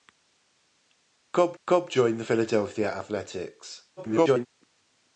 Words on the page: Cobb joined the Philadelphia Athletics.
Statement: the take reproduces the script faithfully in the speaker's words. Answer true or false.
false